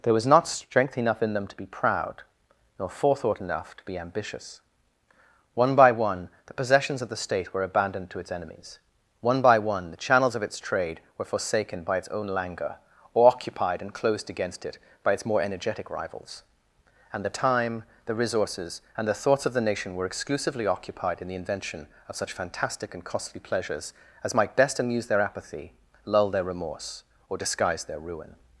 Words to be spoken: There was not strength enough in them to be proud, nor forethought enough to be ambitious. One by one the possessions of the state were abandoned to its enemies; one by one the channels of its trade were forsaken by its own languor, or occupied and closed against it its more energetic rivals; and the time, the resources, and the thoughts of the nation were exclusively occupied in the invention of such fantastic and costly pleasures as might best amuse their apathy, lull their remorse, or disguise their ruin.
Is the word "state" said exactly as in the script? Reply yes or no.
yes